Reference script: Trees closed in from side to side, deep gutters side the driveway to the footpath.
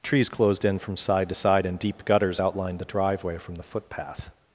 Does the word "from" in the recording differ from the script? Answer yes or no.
no